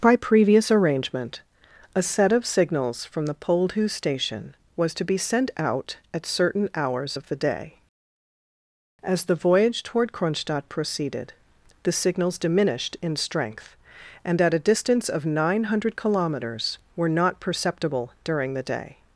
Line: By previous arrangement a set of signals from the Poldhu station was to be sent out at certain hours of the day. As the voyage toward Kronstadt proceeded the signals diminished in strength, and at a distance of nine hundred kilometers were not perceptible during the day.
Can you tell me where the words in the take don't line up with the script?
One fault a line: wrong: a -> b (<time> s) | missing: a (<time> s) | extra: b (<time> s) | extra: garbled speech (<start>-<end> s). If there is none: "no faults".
no faults